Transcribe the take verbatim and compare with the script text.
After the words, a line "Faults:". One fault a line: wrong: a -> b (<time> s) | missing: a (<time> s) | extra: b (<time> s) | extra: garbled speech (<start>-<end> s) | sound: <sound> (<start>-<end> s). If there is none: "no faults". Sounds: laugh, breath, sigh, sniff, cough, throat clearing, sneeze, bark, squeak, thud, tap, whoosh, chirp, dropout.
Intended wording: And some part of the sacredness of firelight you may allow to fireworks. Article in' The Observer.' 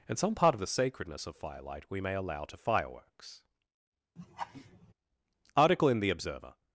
And some part of the sacredness of firelight we may allow to fireworks. Article in' The Observer.'
Faults:
wrong: you -> we (1.9 s)
sound: laugh (4.2-4.9 s)